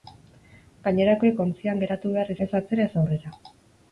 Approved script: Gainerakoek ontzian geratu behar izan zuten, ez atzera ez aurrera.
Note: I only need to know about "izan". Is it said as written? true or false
false